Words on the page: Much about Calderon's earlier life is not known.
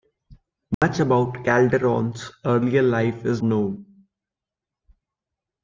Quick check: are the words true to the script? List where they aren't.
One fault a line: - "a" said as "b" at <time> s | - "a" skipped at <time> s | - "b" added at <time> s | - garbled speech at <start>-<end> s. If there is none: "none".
- "not" skipped at 3.4 s